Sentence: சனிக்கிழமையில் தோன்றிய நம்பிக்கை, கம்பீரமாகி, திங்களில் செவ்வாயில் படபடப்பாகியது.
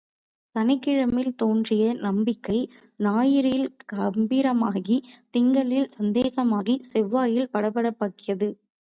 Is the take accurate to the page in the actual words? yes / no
no